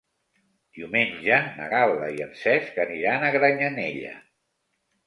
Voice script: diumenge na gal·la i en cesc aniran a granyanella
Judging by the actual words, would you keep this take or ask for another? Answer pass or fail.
pass